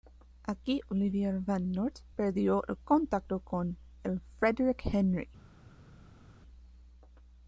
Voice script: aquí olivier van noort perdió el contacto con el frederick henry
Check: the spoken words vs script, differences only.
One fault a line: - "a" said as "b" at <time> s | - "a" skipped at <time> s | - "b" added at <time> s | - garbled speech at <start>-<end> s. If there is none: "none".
none